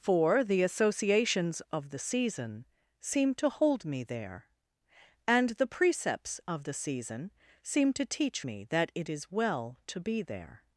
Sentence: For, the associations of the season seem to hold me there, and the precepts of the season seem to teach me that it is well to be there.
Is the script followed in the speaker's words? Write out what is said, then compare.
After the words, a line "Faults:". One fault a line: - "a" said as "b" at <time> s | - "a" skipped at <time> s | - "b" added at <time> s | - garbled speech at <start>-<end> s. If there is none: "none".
For, the associations of the season seem to hold me there, and the precepts of the season seem to teach me that it is well to be there.
Faults:
none